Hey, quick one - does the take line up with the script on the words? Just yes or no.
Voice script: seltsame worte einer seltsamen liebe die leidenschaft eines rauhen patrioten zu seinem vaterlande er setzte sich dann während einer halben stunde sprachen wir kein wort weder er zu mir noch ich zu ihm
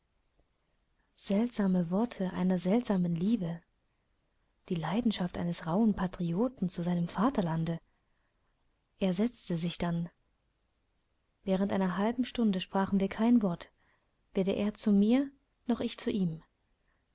yes